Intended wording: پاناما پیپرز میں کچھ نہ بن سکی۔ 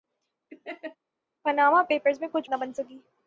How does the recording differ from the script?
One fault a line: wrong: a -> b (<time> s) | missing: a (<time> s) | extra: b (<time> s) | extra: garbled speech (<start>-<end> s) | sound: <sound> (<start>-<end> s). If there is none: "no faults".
sound: laugh (0.5-1.0 s)